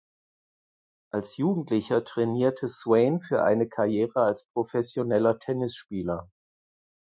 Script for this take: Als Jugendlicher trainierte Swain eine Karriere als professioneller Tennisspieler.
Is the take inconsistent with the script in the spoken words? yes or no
yes